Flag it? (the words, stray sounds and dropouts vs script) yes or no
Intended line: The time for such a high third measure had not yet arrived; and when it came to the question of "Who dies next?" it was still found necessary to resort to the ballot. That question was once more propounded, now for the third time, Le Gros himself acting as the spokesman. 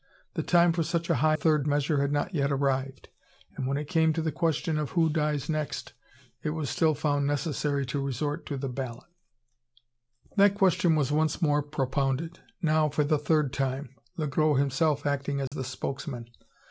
yes